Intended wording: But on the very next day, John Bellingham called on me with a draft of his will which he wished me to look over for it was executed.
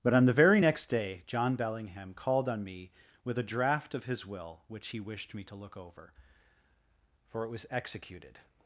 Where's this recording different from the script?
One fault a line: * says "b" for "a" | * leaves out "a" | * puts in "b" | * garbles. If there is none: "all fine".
all fine